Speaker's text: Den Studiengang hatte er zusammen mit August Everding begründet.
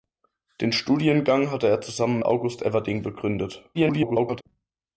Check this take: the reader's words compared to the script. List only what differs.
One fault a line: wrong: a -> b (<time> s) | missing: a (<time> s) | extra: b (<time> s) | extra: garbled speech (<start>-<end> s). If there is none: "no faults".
missing: mit (2.2 s)
extra: garbled speech (3.7-4.4 s)